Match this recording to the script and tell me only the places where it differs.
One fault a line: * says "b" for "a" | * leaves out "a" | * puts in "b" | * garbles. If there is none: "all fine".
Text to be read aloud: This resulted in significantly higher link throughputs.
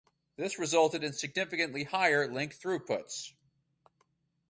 all fine